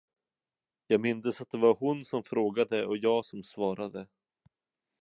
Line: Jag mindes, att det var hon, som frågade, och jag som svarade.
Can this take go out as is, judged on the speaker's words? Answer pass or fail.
pass